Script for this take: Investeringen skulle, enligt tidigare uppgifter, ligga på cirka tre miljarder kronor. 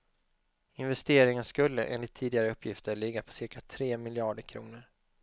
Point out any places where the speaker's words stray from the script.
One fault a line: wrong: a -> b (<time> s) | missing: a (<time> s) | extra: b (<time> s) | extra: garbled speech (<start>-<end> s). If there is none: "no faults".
no faults